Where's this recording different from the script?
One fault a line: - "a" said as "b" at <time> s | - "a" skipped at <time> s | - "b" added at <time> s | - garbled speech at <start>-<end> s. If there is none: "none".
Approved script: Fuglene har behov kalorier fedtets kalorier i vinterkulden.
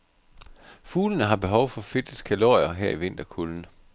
- "kalorier" said as "for" at 1.7 s
- "her" added at 2.7 s